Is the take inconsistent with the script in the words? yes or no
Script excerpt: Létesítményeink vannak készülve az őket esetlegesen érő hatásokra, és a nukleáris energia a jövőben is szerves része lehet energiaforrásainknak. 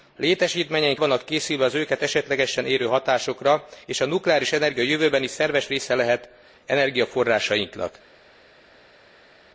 no